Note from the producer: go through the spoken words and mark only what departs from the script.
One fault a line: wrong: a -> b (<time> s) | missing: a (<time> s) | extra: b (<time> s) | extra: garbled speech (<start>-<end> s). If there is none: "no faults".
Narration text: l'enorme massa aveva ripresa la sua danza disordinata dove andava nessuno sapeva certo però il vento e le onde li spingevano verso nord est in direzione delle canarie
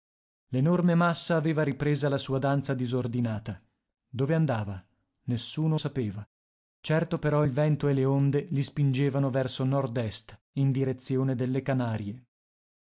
no faults